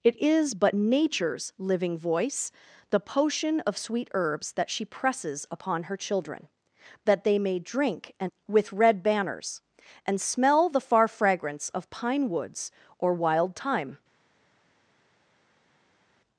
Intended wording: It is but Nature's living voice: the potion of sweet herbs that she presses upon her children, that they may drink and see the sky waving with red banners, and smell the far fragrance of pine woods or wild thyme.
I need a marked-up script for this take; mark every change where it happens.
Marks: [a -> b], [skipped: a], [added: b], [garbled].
It is but Nature's living voice: the potion of sweet herbs that she presses upon her children, that they may drink and [skipped: see the sky waving] with red banners, and smell the far fragrance of pine woods or wild thyme.